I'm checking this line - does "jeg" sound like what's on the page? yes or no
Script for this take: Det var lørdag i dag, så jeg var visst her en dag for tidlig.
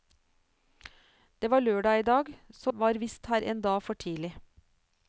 no